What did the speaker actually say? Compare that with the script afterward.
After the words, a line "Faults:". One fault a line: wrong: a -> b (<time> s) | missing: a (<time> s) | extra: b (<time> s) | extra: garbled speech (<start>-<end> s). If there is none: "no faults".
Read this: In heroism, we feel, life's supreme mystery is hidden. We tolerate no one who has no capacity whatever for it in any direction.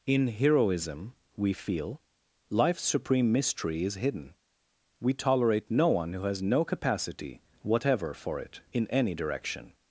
In heroism, we feel, life's supreme mystery is hidden. We tolerate no one who has no capacity whatever for it in any direction.
Faults:
no faults